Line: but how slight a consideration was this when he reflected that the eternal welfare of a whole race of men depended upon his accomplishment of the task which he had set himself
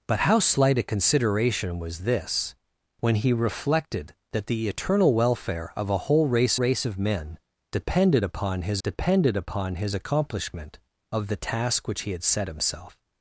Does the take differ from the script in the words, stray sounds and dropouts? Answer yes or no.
yes